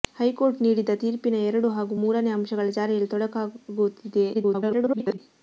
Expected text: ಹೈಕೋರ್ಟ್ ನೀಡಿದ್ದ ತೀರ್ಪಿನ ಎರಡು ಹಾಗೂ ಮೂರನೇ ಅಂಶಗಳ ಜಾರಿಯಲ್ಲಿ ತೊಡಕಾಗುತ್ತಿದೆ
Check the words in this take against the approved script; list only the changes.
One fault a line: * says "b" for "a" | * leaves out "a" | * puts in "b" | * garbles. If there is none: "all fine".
* garbles